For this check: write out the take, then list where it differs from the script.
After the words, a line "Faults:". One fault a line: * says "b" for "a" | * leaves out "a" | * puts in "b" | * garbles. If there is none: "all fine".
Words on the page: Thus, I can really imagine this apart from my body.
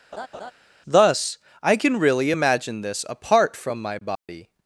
Thus, I can really imagine this apart from my body.
Faults:
all fine